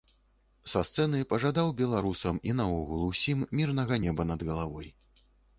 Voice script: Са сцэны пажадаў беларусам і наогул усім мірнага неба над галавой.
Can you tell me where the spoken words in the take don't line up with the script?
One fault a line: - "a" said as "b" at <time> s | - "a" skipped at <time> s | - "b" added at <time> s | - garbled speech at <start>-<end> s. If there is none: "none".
none